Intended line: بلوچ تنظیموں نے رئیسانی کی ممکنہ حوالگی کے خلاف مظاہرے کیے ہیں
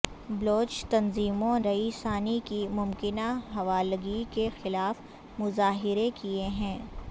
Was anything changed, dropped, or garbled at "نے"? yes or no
yes